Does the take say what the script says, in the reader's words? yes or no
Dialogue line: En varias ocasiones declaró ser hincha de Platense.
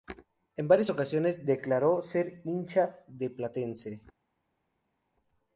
yes